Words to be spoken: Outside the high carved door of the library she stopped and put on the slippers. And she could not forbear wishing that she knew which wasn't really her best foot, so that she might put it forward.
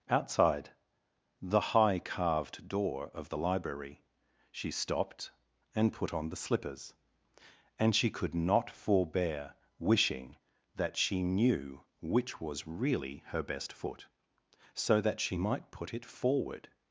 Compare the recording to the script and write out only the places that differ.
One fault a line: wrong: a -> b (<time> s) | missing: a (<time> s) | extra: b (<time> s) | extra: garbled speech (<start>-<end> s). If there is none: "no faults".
wrong: wasn't -> was (12.4 s)